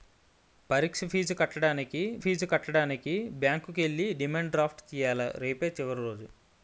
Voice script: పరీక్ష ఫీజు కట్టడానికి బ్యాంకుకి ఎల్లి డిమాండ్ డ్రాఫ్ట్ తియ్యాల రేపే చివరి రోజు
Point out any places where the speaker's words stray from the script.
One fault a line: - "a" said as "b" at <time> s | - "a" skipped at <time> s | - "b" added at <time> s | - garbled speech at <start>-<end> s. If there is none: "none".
- "ఫీజు కట్టడానికి" added at 2.2 s